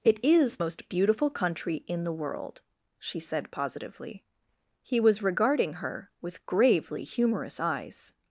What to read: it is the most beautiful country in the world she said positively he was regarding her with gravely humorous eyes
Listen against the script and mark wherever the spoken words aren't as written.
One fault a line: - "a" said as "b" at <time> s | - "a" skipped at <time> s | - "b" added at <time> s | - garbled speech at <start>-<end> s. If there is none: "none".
- "the" skipped at 0.6 s